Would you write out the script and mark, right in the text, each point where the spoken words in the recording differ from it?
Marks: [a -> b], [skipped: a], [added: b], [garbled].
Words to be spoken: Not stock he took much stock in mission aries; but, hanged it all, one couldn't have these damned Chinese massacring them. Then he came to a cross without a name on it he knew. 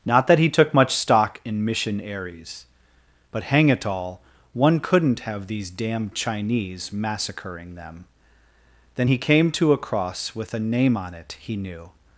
Not [stock -> that] he took much stock in mission aries; but, [hanged -> hang] it all, one couldn't have these damned Chinese massacring them. Then he came to a cross [without -> with] a name on it he knew.